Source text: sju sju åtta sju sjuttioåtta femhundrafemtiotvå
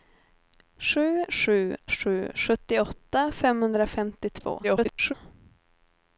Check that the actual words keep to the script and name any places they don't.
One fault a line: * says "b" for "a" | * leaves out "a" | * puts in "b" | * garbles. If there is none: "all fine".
* leaves out "åtta"
* garbles